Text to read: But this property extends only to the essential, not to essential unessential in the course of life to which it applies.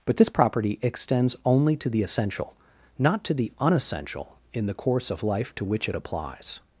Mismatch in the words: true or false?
true